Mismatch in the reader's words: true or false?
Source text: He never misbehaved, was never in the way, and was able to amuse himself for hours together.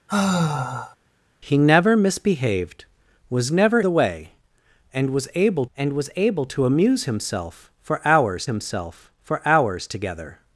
true